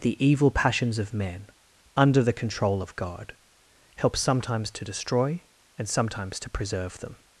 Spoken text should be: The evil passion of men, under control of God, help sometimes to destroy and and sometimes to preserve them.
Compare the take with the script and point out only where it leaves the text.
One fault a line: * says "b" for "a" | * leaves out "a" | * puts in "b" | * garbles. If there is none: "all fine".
* says "passions" for "passion"
* puts in "the"
* leaves out "and"